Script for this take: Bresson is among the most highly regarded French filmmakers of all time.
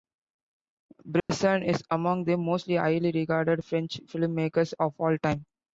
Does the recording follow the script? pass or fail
pass